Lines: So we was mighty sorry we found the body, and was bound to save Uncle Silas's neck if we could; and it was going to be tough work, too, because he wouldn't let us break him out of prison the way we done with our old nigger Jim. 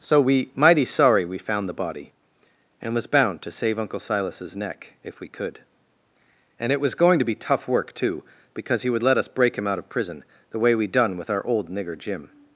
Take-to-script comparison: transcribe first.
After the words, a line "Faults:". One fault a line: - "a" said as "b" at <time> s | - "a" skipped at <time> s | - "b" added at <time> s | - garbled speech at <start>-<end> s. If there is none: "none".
So we mighty sorry we found the body, and was bound to save Uncle Silas's neck if we could; and it was going to be tough work, too, because he would let us break him out of prison the way we done with our old nigger Jim.
Faults:
- "was" skipped at 0.5 s
- "wouldn't" said as "would" at 8.9 s